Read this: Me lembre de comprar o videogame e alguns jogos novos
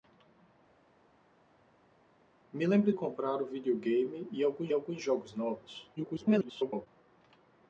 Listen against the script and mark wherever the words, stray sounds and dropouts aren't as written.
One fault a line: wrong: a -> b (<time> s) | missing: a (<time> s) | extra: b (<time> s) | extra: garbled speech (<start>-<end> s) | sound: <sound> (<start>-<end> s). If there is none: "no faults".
missing: de (2.9 s)
extra: alguns (4.7 s)
extra: garbled speech (6.0-6.9 s)